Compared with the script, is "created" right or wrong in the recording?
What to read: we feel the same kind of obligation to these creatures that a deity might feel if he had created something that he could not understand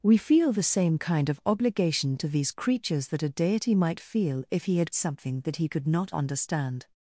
wrong